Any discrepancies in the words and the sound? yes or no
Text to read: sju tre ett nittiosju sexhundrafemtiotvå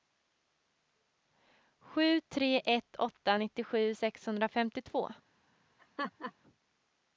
yes